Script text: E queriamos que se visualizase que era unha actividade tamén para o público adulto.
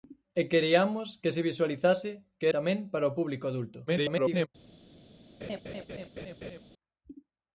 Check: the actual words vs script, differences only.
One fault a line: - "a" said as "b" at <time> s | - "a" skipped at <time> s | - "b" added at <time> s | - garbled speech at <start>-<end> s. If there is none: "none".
- "era unha actividade" skipped at 2.5 s
- garbled speech at 3.9-4.5 s